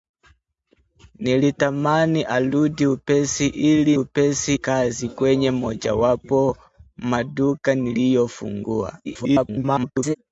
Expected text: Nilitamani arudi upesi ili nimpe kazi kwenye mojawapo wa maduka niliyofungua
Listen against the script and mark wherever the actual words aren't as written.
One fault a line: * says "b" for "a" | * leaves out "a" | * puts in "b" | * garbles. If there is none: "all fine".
* says "upesi" for "nimpe"
* leaves out "wa"
* garbles